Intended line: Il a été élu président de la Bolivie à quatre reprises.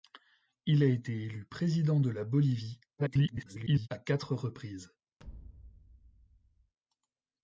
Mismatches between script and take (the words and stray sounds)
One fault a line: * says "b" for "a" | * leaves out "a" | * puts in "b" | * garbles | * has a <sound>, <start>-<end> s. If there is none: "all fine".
* garbles
* has a thud, 5.2-6.7 s